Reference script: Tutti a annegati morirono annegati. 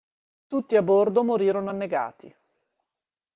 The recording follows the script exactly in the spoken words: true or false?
false